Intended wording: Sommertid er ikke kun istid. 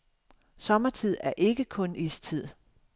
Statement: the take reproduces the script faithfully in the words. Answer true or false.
true